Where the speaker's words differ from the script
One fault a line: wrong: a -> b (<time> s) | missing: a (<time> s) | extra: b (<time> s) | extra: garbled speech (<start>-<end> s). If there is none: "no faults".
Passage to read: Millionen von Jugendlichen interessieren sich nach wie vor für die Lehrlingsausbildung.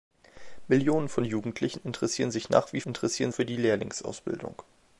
wrong: vor -> interessieren (2.8 s)